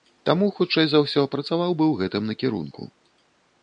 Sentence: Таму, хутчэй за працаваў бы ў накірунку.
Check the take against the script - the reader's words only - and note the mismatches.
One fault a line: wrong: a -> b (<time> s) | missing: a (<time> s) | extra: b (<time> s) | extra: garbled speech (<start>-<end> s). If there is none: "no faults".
extra: ўсё (1.0 s)
extra: гэтым (2.0 s)